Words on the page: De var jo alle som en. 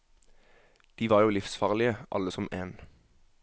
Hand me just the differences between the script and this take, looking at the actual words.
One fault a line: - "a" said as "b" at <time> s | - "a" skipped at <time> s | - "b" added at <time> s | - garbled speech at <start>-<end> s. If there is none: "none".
- "livsfarlige" added at 1.3 s